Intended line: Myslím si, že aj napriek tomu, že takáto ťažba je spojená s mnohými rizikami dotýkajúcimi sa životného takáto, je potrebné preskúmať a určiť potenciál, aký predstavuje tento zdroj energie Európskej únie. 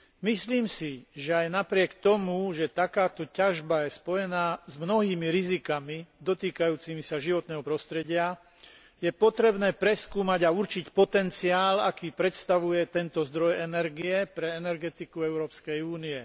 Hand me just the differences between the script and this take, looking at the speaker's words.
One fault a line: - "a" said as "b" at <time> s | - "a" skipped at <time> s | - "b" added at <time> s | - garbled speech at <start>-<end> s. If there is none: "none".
- "takáto" said as "prostredia" at 7.6 s
- "pre energetiku" added at 14.3 s